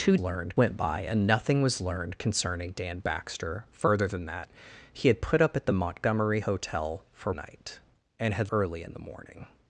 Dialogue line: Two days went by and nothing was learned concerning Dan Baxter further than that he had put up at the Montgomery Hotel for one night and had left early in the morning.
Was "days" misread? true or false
true